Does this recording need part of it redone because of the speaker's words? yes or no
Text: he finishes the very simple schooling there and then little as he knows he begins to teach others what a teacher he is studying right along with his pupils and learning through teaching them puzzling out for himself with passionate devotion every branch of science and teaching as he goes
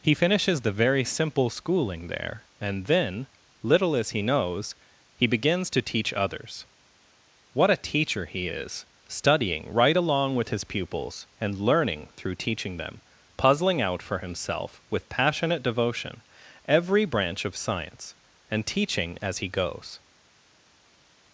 no